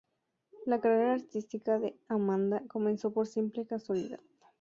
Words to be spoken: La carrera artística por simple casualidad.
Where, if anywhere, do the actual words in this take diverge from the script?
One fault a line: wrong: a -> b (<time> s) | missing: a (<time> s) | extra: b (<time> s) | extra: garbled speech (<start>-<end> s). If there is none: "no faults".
extra: de Amanda comenzó (1.8 s)